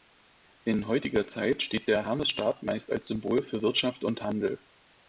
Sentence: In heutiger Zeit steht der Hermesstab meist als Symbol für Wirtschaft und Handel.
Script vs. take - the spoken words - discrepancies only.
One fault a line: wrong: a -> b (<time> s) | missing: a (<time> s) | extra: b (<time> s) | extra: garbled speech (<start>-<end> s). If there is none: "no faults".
no faults